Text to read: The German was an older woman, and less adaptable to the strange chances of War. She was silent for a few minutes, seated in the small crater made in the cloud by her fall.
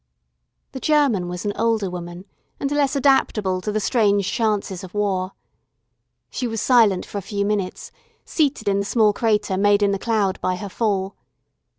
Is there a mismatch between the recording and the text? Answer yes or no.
no